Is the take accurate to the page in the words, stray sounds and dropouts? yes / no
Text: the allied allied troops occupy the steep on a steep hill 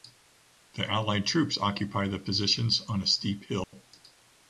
no